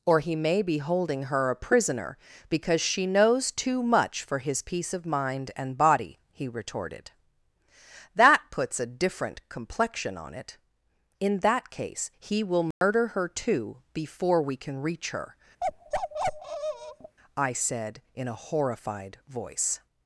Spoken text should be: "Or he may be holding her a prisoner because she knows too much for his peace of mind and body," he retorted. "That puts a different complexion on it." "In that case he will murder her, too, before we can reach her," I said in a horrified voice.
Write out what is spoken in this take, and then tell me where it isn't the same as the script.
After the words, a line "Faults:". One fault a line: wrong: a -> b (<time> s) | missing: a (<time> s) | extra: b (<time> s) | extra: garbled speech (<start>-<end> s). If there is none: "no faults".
"Or he may be holding her a prisoner because she knows too much for his peace of mind and body," he retorted. "That puts a different complexion on it." "In that case he will murder her, too, before we can reach her," I said in a horrified voice.
Faults:
no faults